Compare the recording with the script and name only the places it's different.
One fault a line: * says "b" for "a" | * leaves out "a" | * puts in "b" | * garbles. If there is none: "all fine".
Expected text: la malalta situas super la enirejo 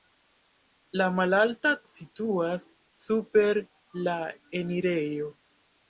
all fine